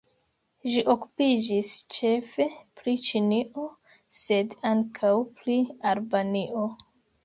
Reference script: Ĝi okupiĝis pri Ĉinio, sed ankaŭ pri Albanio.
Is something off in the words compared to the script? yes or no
yes